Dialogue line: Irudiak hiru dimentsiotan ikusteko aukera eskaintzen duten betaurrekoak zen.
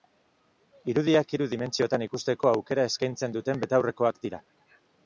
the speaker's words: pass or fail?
fail